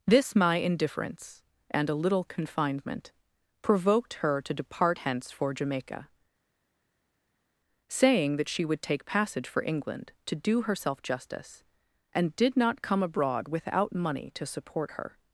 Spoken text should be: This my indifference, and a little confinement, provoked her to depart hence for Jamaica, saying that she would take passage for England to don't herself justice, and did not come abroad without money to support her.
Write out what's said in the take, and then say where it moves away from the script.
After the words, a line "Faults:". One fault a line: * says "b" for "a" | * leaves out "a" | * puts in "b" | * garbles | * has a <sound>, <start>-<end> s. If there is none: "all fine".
This my indifference, and a little confinement, provoked her to depart hence for Jamaica, saying that she would take passage for England to do herself justice, and did not come abroad without money to support her.
Faults:
* says "do" for "don't"